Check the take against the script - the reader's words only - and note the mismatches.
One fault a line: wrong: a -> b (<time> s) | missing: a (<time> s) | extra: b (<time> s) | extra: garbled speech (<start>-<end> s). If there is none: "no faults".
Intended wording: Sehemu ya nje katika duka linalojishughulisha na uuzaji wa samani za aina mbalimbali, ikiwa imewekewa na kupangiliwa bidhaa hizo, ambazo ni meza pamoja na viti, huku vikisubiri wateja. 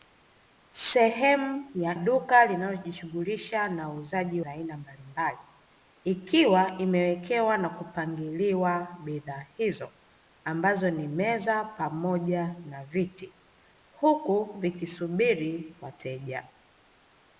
missing: nje katika (1.9 s)
missing: wa samani (4.4 s)